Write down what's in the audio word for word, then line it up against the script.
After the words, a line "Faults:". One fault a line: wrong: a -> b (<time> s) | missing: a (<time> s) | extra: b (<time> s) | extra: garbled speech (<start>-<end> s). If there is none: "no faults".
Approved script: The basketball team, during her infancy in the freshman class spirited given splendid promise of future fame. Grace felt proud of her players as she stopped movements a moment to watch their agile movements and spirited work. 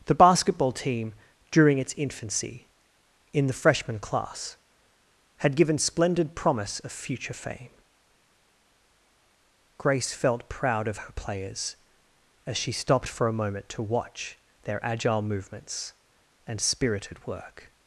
The basketball team, during its infancy in the freshman class had given splendid promise of future fame. Grace felt proud of her players as she stopped for a moment to watch their agile movements and spirited work.
Faults:
wrong: her -> its (1.8 s)
wrong: spirited -> had (5.4 s)
wrong: movements -> for (13.1 s)